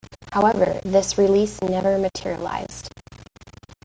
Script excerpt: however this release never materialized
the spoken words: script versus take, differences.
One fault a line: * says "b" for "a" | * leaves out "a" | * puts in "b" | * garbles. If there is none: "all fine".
all fine